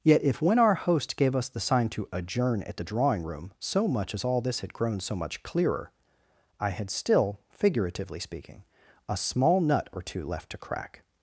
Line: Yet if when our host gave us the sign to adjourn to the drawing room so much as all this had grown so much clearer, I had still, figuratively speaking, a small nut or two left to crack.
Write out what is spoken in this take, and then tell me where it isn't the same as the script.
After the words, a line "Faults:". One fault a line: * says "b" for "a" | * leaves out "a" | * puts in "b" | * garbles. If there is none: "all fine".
Yet if when our host gave us the sign to adjourn at the drawing room so much as all this had grown so much clearer, I had still, figuratively speaking, a small nut or two left to crack.
Faults:
* says "at" for "to"